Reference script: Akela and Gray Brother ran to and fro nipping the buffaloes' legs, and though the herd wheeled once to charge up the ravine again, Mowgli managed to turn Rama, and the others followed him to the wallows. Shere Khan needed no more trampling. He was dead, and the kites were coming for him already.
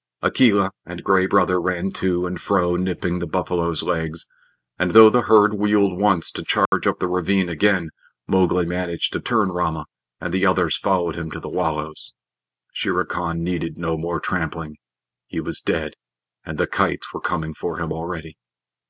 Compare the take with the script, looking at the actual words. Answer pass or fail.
pass